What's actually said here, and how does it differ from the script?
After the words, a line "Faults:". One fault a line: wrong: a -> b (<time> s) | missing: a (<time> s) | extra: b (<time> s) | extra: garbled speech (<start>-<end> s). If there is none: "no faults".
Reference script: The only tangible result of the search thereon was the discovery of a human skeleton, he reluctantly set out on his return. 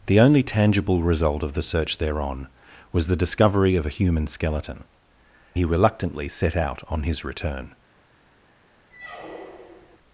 The only tangible result of the search thereon was the discovery of a human skeleton, he reluctantly set out on his return.
Faults:
no faults